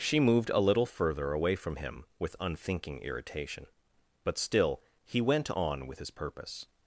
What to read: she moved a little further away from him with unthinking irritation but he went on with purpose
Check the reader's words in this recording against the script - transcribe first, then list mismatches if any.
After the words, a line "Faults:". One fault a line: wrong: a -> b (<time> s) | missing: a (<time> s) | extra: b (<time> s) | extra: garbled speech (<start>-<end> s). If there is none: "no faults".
she moved a little further away from him with unthinking irritation but still he went on with his purpose
Faults:
extra: still (4.4 s)
extra: his (6.0 s)